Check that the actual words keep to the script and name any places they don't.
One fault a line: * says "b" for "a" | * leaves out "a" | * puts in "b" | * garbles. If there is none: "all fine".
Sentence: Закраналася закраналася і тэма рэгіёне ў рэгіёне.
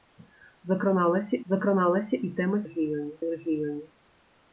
all fine